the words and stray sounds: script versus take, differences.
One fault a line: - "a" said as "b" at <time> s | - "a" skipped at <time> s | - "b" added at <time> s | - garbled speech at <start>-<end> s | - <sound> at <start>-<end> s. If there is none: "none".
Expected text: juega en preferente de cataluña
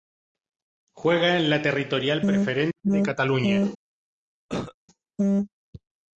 - "la territorial" added at 1.5 s
- cough at 4.5-4.7 s